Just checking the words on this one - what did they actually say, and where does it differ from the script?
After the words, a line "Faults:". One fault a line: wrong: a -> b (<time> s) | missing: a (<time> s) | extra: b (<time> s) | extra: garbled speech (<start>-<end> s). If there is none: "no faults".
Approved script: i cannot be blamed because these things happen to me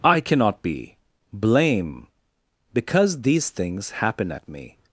i cannot be blame because these things happen at me
Faults:
wrong: blamed -> blame (1.3 s)
wrong: to -> at (4.3 s)